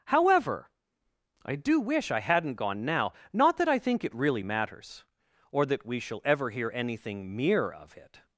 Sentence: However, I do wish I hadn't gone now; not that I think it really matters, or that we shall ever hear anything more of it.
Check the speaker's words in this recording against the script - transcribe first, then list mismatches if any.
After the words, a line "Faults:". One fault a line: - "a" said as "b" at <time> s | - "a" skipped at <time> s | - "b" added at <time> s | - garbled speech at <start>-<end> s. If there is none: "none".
However, I do wish I hadn't gone now; not that I think it really matters, or that we shall ever hear anything mere of it.
Faults:
- "more" said as "mere" at 7.4 s